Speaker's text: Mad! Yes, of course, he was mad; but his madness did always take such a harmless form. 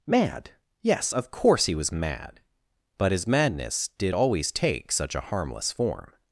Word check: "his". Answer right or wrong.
right